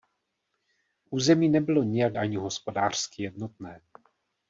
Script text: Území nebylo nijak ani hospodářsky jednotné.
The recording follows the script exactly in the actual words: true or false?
true